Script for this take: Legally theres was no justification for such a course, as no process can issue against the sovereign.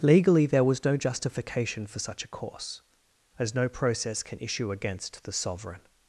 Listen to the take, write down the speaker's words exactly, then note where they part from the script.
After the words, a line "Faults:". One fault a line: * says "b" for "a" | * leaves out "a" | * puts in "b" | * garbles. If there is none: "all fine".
Legally there was no justification for such a course, as no process can issue against the sovereign.
Faults:
* says "there" for "theres"